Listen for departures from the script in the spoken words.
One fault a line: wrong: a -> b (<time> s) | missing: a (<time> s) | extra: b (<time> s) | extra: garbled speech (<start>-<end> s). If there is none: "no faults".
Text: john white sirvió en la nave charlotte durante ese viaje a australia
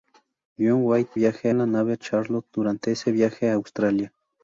wrong: sirvió -> viaje (1.1 s)